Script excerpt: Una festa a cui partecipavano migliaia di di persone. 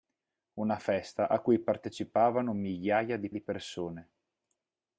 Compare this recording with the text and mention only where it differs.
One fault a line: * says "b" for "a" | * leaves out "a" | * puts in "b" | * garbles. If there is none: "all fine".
all fine